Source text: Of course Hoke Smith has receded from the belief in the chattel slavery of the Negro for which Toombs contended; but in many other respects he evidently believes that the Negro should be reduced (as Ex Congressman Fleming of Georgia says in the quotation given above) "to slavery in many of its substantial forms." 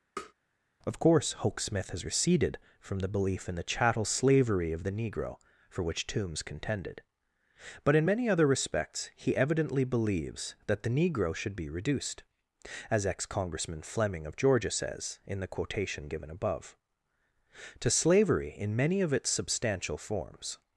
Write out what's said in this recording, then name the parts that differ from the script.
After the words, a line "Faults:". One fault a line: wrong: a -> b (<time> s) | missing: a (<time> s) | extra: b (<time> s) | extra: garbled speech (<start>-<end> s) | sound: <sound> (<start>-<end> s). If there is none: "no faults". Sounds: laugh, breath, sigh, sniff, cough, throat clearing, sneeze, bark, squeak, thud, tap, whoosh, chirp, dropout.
Of course Hoke Smith has receded from the belief in the chattel slavery of the Negro for which Toombs contended; but in many other respects he evidently believes that the Negro should be reduced (as Ex Congressman Fleming of Georgia says in the quotation given above) "to slavery in many of its substantial forms."
Faults:
sound: tap (0.2-0.3 s)